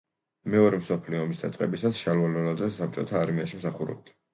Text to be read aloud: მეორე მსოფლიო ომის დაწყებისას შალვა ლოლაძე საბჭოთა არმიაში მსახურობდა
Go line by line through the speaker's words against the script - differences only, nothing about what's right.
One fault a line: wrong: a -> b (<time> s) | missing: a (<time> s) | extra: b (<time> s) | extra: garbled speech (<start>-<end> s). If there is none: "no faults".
no faults